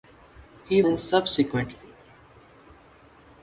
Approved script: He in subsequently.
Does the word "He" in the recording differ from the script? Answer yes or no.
no